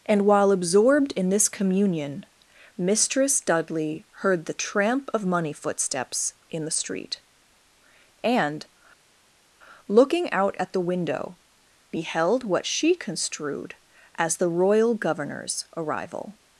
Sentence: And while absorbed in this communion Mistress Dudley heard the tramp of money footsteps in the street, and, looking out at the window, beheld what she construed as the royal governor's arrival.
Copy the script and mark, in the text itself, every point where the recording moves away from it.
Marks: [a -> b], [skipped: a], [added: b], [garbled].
And while absorbed in this communion Mistress Dudley heard the tramp of money footsteps in the street, and, looking out at the window, beheld what she construed as the royal governor's arrival.